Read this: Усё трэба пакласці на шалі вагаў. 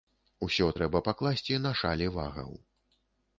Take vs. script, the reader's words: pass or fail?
pass